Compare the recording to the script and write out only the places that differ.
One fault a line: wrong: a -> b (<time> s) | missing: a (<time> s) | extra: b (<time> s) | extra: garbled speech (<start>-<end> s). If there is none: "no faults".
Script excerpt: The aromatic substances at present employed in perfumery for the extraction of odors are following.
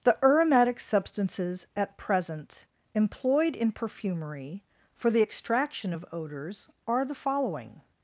extra: the (7.0 s)